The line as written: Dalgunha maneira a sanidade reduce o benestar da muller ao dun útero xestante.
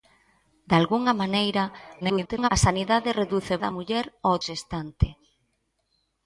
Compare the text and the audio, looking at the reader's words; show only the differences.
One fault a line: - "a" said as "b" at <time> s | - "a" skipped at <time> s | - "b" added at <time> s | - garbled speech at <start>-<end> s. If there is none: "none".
- garbled speech at 2.0-2.5 s
- "benestar" skipped at 3.6 s
- "dun útero" skipped at 4.3 s